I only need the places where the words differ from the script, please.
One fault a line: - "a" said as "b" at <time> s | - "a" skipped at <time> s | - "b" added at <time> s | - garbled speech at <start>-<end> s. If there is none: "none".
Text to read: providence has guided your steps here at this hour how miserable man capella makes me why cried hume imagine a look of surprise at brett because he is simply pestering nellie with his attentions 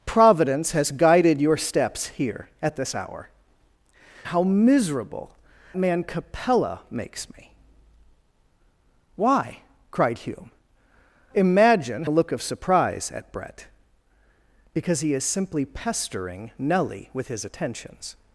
none